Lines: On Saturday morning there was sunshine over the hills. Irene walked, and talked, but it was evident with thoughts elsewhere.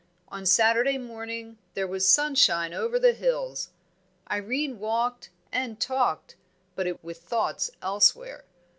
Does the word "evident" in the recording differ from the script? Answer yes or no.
yes